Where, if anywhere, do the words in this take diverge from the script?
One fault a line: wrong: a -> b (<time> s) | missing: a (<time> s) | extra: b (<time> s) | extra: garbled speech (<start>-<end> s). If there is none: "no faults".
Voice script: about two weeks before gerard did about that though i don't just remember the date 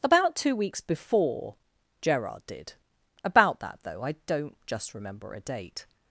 wrong: the -> a (5.3 s)